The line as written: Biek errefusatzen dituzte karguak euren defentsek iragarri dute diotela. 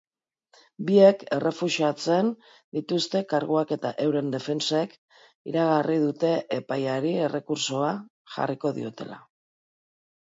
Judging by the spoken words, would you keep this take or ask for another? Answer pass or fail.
fail